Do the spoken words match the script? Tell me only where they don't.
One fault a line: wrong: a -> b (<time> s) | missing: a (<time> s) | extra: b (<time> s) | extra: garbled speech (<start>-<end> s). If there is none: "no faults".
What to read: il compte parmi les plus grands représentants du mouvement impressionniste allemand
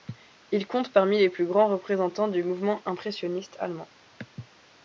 no faults